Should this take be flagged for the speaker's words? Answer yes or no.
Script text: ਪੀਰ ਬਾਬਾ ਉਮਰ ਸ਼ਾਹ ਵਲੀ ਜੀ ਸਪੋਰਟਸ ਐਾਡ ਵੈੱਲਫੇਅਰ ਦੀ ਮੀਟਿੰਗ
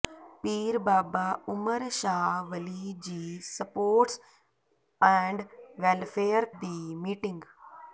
no